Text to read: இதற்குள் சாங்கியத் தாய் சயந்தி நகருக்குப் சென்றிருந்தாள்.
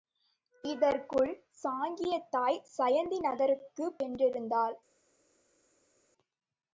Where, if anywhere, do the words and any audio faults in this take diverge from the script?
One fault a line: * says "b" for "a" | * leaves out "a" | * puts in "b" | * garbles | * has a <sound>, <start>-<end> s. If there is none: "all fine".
all fine